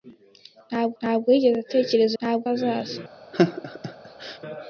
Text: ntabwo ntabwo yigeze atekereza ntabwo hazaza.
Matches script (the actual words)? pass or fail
pass